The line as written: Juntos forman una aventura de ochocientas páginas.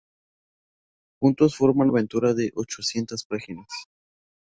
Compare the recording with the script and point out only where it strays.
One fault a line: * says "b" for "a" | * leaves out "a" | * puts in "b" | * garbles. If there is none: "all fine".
* leaves out "una"